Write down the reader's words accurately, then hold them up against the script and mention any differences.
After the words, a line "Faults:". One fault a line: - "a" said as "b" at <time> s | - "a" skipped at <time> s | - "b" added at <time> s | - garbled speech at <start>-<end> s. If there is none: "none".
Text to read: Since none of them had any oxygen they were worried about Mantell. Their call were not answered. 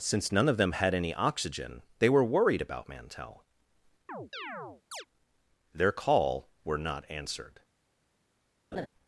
Since none of them had any oxygen they were worried about Mantell. Their call were not answered.
Faults:
none